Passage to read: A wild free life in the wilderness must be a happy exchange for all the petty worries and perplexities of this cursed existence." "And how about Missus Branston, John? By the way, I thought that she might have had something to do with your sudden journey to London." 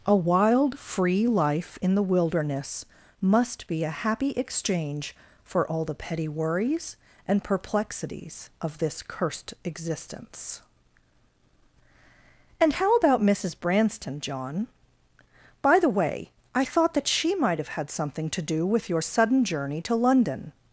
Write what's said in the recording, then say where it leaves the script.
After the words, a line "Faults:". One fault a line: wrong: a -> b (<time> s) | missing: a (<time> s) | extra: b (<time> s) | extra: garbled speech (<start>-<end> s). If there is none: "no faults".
A wild free life in the wilderness must be a happy exchange for all the petty worries and perplexities of this cursed existence." "And how about Missus Branston, John? By the way, I thought that she might have had something to do with your sudden journey to London."
Faults:
no faults